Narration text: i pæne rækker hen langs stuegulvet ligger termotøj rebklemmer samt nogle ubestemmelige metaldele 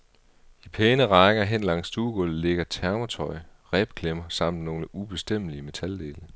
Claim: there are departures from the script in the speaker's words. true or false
false